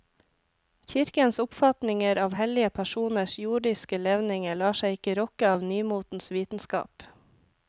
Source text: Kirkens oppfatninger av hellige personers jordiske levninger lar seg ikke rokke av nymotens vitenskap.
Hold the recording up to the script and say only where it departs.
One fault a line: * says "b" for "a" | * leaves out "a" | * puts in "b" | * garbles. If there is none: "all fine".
all fine